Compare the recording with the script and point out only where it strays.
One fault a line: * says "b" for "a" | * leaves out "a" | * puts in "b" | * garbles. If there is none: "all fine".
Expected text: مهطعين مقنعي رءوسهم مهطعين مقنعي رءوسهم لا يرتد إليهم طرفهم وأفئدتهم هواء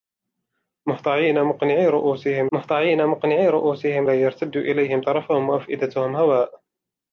all fine